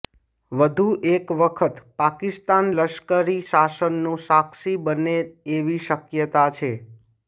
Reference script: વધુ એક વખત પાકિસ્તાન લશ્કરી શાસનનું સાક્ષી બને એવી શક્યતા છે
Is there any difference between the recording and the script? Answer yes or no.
no